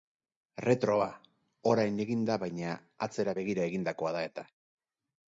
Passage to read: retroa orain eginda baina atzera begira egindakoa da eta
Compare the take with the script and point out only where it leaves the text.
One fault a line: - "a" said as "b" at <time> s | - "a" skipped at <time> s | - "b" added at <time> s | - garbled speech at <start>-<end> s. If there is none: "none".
none